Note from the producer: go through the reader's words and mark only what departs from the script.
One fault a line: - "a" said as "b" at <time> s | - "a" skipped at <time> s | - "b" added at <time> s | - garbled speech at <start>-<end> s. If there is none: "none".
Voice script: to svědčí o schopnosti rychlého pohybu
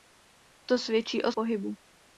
- "schopnosti rychlého" skipped at 1.3 s